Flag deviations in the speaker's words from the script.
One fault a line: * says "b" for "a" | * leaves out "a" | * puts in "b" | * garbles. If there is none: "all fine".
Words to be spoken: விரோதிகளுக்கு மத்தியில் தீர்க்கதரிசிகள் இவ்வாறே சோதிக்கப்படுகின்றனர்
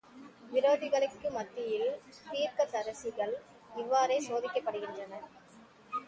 all fine